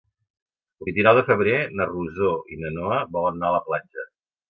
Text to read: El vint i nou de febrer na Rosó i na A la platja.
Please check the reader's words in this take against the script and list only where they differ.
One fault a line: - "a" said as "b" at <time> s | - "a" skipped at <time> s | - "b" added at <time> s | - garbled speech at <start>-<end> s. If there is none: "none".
- "Noa volen anar" added at 2.8 s